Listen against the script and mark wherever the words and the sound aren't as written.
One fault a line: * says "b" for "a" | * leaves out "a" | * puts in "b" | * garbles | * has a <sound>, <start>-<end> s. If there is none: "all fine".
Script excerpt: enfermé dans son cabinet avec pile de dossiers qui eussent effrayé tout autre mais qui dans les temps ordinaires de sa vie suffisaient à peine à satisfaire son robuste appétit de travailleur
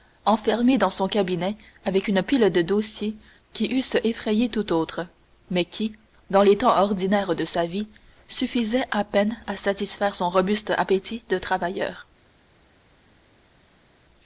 * puts in "une"